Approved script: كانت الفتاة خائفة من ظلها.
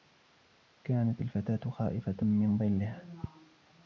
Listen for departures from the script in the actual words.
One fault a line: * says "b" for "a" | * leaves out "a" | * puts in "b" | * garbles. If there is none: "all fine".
all fine